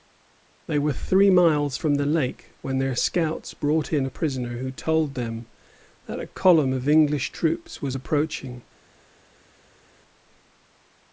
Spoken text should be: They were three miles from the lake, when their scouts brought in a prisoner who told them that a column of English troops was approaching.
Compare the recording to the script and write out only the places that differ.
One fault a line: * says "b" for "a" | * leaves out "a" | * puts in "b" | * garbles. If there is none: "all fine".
all fine